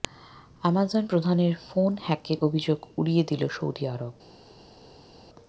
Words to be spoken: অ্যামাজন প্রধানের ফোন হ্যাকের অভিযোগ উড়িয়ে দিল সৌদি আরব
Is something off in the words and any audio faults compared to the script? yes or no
no